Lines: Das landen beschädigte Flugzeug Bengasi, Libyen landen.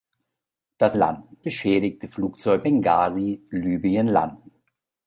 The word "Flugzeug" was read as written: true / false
true